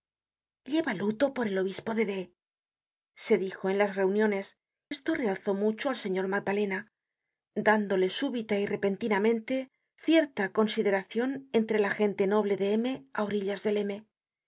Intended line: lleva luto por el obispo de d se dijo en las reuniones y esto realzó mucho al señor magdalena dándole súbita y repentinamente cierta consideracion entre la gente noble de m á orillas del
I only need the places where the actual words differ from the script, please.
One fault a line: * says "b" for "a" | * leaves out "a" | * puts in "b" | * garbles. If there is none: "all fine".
* leaves out "y"